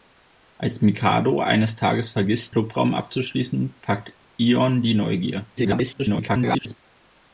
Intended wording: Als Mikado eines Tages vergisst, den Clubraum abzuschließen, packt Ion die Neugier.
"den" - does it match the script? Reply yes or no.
no